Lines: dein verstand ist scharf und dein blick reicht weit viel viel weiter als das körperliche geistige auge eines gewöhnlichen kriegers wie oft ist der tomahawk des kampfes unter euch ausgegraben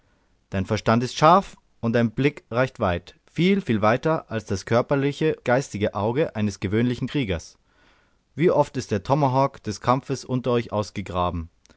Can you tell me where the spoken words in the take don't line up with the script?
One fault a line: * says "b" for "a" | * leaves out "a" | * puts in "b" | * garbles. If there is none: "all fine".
all fine